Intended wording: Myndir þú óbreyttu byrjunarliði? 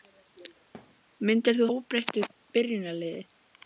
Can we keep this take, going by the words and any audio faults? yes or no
no